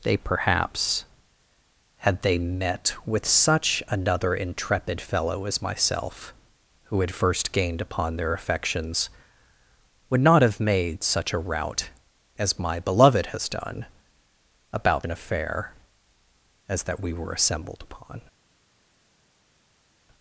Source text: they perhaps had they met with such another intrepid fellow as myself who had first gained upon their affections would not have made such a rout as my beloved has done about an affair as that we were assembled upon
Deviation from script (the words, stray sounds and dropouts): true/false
false